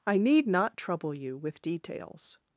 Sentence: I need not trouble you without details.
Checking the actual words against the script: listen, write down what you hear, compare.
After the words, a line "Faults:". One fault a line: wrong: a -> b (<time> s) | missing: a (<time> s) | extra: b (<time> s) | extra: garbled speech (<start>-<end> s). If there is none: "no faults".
I need not trouble you with details.
Faults:
wrong: without -> with (1.3 s)